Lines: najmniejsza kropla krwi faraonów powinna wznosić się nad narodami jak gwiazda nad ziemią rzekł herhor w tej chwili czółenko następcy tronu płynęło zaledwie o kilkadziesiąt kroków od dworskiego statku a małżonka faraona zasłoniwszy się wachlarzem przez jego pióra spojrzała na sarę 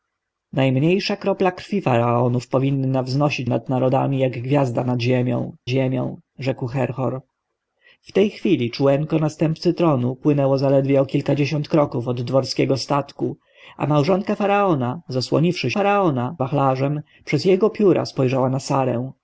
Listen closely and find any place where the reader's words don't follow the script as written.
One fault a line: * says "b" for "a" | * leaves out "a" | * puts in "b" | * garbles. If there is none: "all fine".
* leaves out "się"
* puts in "ziemią"
* says "faraona" for "się"